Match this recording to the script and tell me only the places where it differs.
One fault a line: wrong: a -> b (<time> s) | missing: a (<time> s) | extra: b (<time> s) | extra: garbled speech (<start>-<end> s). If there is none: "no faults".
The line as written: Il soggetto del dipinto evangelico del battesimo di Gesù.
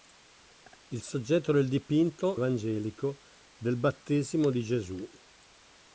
no faults